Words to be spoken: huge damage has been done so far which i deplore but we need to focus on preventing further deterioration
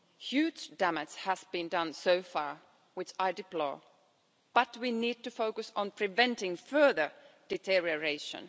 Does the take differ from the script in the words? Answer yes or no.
no